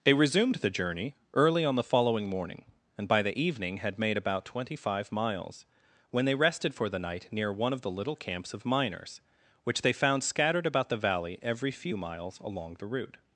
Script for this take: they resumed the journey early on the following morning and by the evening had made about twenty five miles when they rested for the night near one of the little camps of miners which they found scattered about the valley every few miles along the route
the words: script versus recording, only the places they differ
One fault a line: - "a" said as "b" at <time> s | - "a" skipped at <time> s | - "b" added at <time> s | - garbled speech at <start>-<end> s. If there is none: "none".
none